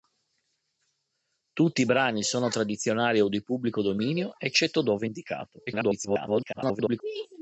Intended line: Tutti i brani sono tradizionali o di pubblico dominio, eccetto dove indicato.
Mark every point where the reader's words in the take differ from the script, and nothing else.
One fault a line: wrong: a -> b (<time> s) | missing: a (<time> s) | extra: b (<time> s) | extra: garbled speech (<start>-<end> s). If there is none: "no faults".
extra: garbled speech (5.7-7.0 s)